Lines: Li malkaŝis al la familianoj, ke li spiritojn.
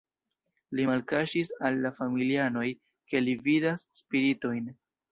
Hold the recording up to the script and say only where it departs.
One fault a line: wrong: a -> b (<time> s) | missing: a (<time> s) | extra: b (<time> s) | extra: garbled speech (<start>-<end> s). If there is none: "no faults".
extra: vidas (3.5 s)